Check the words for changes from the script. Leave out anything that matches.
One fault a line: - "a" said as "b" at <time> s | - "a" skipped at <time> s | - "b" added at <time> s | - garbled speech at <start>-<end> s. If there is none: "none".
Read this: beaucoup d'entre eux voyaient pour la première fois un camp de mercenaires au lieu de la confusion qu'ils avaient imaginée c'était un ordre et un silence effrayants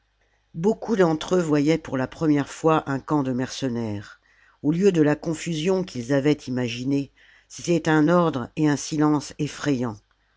none